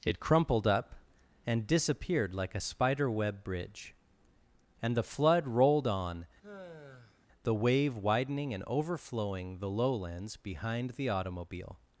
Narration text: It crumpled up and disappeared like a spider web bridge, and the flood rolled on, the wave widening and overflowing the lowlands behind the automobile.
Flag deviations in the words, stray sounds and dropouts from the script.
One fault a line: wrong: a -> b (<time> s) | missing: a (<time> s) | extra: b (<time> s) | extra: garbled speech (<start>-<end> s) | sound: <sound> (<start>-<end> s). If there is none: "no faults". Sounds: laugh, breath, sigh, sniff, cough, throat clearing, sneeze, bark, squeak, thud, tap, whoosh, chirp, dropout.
sound: sigh (6.4-7.3 s)